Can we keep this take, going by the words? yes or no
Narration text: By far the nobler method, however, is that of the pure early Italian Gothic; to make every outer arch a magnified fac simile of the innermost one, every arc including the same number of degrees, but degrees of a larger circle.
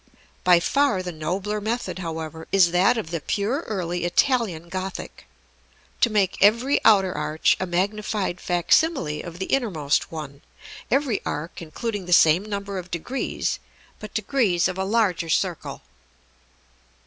yes